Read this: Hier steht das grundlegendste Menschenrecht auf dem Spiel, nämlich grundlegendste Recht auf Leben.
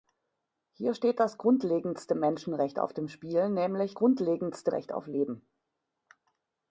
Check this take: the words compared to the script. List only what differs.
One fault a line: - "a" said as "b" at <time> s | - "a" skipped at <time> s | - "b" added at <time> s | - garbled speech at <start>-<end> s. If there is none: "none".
none